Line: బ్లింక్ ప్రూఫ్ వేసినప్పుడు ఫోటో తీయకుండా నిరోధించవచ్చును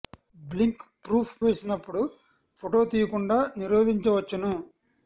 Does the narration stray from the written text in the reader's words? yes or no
no